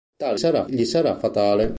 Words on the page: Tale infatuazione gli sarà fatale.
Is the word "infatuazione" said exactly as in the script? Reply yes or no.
no